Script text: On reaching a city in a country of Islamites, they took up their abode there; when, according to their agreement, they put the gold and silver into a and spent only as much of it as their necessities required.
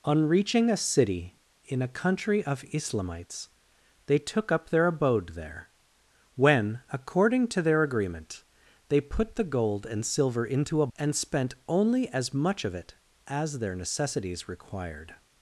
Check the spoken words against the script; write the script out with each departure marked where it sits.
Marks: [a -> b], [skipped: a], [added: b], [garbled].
On reaching a city in a country of Islamites, they took up their abode there; when, according to their agreement, they put the gold and silver into a and spent only as much of it as their necessities required.